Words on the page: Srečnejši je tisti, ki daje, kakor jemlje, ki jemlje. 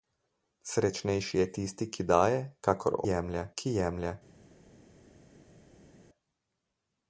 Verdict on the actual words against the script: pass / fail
pass